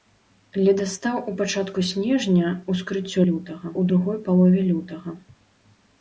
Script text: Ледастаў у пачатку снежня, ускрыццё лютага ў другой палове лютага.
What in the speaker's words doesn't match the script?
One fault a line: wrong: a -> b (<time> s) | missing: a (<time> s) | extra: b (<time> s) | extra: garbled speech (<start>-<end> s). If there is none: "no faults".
no faults